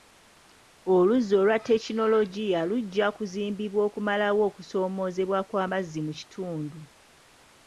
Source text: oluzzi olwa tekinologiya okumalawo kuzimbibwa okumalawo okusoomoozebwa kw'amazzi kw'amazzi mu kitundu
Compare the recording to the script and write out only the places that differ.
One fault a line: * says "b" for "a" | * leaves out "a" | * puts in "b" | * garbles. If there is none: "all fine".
* says "lujja" for "okumalawo"
* leaves out "kw'amazzi"